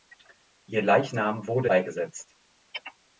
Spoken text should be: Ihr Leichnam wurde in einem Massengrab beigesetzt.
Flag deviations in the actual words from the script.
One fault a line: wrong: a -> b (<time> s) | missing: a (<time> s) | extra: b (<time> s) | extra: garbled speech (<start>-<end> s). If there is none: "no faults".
missing: in einem Massengrab (1.7 s)